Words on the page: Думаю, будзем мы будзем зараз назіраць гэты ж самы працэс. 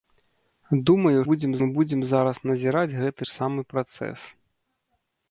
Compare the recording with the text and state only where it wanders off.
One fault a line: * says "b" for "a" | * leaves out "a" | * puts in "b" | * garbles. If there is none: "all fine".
all fine